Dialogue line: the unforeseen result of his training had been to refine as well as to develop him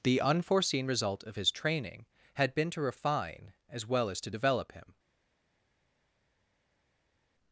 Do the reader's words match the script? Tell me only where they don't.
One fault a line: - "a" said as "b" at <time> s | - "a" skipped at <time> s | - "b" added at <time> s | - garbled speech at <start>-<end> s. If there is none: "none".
none